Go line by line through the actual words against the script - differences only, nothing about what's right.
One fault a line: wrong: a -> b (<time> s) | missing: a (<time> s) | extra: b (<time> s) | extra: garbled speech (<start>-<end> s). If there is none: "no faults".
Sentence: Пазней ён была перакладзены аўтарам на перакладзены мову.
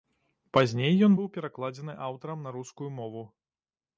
wrong: была -> быў (1.2 s)
wrong: перакладзены -> рускую (2.6 s)